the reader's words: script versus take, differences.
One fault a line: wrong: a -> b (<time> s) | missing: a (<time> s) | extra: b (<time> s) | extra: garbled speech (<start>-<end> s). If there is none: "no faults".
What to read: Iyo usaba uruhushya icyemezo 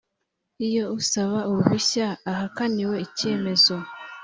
extra: ahakaniwe (2.3 s)